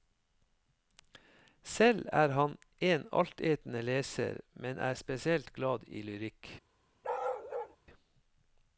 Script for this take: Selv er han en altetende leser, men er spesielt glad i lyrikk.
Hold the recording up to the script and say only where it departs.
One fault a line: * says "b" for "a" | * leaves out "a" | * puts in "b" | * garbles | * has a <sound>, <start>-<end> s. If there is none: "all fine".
* has a bark, 7.0-7.8 s